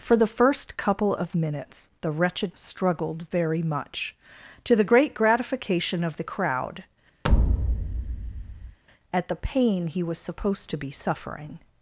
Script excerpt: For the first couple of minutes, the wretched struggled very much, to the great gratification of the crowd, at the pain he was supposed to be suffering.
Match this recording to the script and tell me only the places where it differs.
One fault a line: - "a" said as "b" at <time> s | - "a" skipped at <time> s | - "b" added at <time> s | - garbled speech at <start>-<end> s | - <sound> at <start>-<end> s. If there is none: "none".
- thud at 7.2-8.8 s